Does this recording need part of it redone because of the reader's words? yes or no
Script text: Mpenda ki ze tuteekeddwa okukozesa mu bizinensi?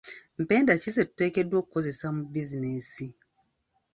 no